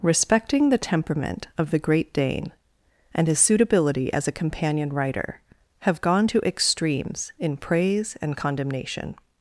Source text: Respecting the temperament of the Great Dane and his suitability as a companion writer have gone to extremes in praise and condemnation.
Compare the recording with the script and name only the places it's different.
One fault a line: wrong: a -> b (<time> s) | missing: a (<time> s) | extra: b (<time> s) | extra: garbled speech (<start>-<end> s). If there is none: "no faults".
no faults